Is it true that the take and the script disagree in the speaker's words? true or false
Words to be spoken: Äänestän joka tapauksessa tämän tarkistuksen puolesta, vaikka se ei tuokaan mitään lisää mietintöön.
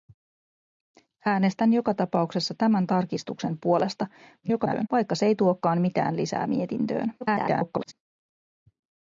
true